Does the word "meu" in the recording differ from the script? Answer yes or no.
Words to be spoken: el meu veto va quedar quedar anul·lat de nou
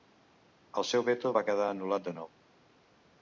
yes